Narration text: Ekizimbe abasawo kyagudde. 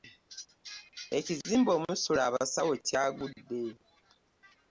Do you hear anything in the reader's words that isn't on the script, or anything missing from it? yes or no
yes